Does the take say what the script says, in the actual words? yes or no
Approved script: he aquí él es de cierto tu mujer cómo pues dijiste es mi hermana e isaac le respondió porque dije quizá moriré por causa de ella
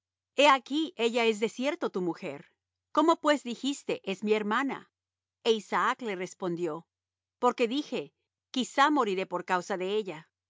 no